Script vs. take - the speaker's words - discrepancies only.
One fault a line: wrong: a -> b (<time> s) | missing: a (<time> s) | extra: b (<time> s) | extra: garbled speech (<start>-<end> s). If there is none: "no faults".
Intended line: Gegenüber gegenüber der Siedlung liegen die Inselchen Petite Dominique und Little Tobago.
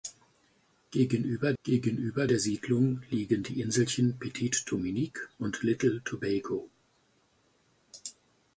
no faults